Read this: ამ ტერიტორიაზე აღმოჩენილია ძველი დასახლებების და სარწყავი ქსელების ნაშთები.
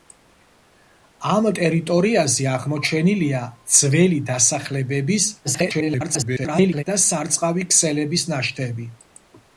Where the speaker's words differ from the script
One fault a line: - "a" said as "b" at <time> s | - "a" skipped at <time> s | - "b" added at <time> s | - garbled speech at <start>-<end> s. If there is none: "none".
- garbled speech at 5.4-6.8 s